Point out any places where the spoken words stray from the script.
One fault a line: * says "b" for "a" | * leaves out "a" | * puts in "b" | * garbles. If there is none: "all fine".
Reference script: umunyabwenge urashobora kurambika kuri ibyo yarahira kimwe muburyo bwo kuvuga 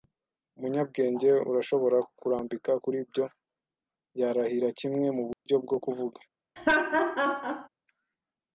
all fine